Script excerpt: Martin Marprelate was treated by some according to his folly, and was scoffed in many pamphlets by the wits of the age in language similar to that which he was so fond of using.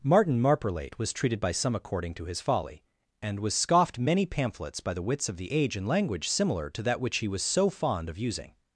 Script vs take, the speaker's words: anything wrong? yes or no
yes